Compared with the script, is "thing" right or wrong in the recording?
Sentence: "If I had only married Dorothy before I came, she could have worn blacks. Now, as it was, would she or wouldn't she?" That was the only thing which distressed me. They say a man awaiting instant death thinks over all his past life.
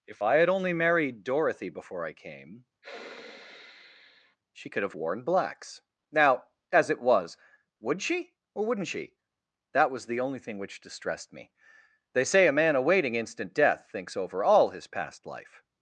right